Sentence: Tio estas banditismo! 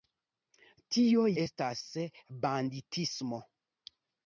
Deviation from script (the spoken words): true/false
false